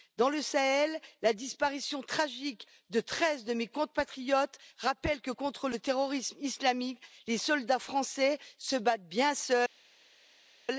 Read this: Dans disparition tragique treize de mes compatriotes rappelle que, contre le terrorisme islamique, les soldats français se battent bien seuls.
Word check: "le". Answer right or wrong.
right